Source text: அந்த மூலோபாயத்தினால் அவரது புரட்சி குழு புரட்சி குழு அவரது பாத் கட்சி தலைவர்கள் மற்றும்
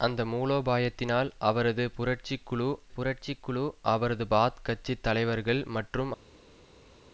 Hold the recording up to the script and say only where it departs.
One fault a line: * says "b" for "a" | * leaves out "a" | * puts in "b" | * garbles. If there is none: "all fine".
all fine